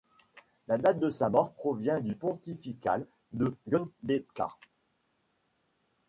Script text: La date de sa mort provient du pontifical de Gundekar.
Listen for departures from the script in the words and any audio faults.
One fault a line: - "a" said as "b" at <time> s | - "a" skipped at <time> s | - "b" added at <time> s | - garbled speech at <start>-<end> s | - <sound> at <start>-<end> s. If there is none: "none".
none